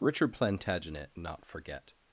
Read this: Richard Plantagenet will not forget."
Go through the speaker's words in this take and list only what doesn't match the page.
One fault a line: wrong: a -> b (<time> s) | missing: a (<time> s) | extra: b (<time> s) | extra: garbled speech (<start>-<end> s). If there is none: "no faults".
missing: will (1.1 s)